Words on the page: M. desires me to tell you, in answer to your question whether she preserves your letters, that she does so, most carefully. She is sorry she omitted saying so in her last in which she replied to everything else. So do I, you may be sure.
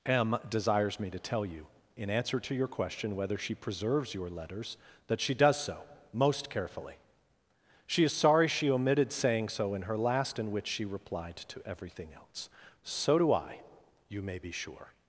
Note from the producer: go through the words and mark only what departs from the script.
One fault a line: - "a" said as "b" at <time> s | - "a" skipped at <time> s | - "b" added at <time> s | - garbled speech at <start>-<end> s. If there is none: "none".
none